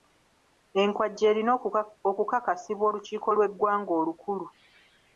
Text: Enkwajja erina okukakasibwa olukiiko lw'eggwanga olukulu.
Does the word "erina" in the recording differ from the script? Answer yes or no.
no